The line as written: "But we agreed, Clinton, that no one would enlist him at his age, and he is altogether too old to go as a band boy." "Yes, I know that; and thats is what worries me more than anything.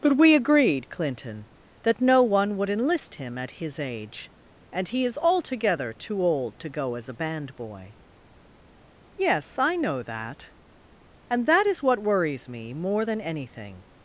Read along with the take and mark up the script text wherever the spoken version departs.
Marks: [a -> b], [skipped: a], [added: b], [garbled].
"But we agreed, Clinton, that no one would enlist him at his age, and he is altogether too old to go as a band boy." "Yes, I know that; and [thats -> that] is what worries me more than anything.